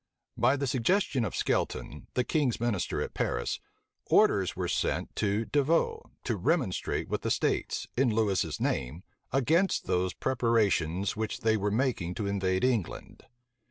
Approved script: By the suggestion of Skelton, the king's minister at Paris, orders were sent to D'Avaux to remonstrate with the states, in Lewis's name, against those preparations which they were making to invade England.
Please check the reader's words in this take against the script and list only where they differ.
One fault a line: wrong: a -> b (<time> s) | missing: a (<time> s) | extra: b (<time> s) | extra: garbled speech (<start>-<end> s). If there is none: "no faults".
no faults